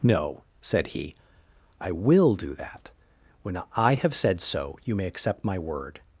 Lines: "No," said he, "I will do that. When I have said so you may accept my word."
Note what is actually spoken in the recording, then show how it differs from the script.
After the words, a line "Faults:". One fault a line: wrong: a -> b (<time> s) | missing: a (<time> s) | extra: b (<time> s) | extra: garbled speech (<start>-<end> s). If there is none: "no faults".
"No," said he, "I will do that. When I have said so you may accept my word."
Faults:
no faults